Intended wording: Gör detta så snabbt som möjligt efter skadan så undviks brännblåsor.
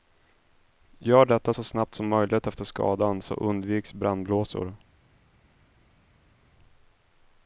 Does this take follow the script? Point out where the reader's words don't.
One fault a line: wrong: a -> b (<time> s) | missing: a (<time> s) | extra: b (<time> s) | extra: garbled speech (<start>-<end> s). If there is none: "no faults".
no faults